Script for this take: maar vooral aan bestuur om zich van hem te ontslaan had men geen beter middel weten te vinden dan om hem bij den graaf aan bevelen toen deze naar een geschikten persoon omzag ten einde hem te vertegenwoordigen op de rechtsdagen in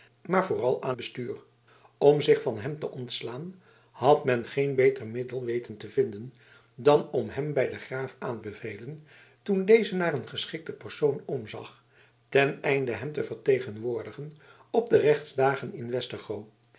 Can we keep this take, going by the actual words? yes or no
yes